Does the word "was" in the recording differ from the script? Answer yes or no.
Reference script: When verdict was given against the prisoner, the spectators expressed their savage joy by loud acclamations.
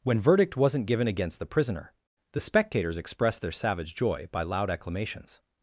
yes